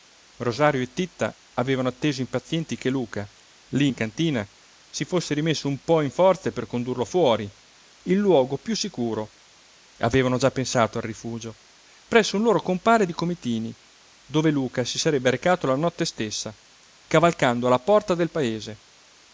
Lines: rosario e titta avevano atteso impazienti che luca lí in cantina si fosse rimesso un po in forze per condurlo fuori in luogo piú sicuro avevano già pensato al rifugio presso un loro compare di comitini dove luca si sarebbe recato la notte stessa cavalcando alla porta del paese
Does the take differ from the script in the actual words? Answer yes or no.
no